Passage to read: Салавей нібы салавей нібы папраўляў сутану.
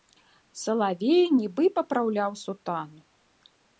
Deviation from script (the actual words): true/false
true